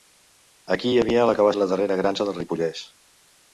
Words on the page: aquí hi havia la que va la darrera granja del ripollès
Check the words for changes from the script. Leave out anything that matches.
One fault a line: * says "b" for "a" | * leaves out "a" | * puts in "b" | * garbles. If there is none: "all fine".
all fine